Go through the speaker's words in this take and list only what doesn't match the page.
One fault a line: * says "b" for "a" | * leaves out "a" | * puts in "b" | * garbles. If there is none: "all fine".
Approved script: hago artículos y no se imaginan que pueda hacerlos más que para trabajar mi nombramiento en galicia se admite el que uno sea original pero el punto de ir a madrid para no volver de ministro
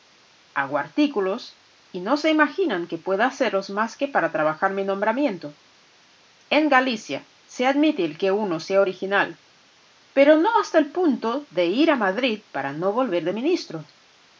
* puts in "no hasta"